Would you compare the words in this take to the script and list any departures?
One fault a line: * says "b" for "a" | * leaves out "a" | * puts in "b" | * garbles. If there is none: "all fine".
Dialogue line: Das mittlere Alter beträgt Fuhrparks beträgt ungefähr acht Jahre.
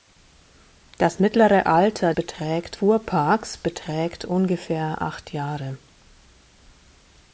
all fine